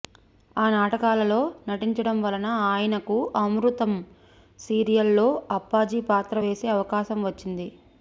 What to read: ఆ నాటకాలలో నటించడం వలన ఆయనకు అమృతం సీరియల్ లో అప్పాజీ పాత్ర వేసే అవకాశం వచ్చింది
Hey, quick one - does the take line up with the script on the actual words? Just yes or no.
yes